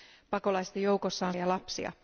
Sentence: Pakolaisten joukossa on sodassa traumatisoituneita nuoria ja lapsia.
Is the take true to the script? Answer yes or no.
no